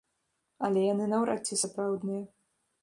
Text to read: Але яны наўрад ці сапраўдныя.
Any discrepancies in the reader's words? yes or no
no